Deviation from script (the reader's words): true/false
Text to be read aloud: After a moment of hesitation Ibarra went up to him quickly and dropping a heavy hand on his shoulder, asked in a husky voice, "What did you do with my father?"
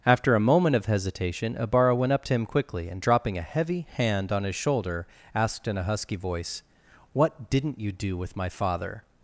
true